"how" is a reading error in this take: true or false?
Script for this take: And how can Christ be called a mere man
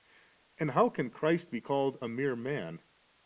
false